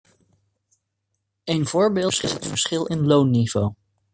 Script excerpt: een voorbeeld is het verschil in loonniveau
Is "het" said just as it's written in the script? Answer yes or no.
yes